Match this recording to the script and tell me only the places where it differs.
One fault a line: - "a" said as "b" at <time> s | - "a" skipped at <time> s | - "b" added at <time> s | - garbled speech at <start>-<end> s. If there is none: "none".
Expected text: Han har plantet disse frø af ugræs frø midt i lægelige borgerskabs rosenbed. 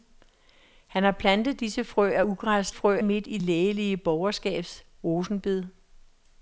none